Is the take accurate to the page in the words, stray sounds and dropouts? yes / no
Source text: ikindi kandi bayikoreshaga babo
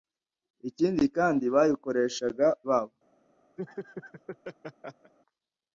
no